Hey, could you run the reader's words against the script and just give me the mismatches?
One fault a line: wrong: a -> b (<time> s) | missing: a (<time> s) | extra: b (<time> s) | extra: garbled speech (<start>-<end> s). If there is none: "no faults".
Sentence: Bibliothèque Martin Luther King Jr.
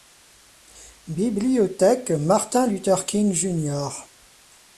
no faults